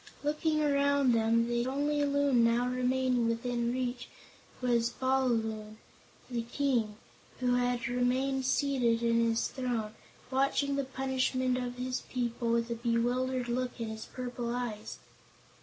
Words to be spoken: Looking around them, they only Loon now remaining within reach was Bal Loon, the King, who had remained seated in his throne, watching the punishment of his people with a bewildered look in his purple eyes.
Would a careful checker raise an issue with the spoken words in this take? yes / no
no